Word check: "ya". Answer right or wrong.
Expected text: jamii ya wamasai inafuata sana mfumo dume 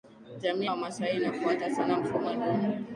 wrong